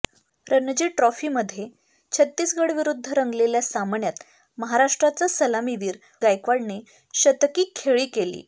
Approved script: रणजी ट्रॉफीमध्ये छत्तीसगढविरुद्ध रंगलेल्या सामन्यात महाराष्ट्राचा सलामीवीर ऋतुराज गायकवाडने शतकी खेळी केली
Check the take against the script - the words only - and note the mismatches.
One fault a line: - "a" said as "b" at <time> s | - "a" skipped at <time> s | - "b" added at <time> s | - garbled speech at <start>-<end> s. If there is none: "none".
- "ऋतुराज" skipped at 6.0 s